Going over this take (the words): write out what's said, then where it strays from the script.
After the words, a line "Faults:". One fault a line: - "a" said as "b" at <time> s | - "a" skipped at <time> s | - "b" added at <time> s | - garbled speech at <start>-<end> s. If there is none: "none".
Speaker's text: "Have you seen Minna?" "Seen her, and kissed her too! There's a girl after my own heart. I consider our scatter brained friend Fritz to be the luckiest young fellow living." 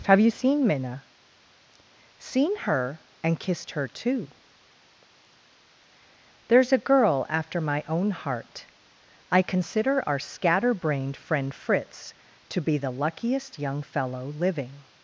"Have you seen Minna?" "Seen her, and kissed her too! There's a girl after my own heart. I consider our scatter brained friend Fritz to be the luckiest young fellow living."
Faults:
none